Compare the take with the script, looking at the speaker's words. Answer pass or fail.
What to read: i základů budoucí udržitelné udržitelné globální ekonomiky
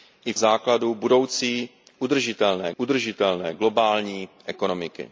pass